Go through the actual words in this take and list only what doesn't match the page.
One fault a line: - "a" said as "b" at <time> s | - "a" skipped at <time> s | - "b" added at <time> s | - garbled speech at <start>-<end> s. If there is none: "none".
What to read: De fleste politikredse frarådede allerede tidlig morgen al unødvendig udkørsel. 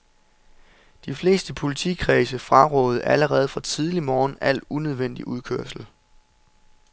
- "fra" added at 3.5 s